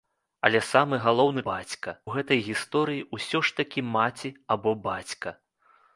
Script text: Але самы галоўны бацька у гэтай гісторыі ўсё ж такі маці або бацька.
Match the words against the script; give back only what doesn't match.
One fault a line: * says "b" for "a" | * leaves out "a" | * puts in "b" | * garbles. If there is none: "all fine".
all fine